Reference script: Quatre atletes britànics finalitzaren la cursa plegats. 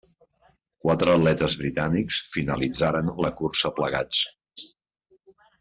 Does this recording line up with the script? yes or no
yes